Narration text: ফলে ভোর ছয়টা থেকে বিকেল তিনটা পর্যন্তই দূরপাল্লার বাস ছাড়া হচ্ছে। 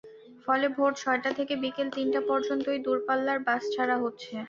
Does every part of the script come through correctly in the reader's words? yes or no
yes